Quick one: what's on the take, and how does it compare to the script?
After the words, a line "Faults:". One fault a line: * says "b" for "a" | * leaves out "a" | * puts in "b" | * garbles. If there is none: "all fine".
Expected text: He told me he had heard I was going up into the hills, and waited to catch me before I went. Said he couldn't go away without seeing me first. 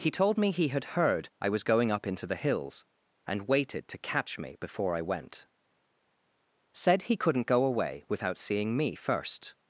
He told me he had heard I was going up into the hills, and waited to catch me before I went. Said he couldn't go away without seeing me first.
Faults:
all fine